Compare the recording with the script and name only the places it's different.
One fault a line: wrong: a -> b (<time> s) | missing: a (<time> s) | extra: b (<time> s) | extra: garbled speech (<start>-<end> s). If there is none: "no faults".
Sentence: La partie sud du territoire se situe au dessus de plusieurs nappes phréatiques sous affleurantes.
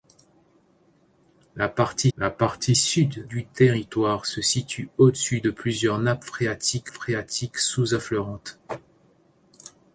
extra: la partie (2.2 s)
extra: phréatiques (6.9 s)